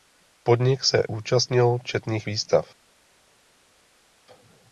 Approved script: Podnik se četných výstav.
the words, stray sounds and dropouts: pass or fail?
fail